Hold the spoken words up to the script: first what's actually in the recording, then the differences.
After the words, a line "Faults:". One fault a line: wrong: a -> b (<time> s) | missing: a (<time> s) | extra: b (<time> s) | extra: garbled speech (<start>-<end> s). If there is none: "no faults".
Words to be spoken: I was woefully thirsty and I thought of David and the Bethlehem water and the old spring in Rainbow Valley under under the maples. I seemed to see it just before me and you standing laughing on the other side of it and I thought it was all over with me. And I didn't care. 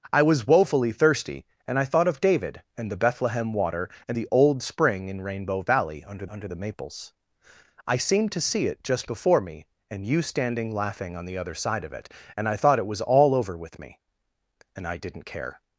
I was woefully thirsty and I thought of David and the Bethlehem water and the old spring in Rainbow Valley under under the maples. I seemed to see it just before me and you standing laughing on the other side of it and I thought it was all over with me. And I didn't care.
Faults:
no faults